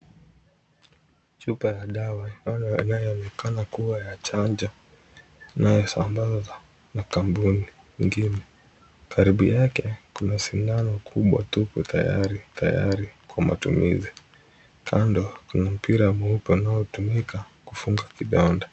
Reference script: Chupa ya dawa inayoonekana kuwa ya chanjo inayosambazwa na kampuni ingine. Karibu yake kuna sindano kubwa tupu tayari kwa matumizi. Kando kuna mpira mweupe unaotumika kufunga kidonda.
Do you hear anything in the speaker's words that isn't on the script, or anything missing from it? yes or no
yes